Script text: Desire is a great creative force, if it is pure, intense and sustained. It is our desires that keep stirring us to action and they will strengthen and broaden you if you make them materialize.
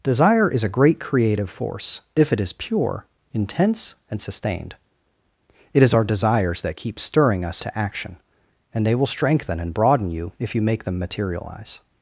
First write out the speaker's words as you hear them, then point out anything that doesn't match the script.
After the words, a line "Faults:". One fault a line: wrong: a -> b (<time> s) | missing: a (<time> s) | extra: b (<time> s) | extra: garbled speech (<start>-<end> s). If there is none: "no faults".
Desire is a great creative force, if it is pure, intense and sustained. It is our desires that keep stirring us to action and they will strengthen and broaden you if you make them materialize.
Faults:
no faults